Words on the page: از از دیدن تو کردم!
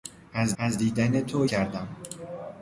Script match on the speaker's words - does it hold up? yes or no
yes